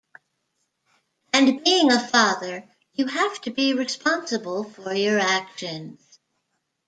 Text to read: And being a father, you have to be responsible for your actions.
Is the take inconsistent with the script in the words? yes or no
no